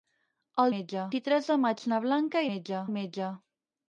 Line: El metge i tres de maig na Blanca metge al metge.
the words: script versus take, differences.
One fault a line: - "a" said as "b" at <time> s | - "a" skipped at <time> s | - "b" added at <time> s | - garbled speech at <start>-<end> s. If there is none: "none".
none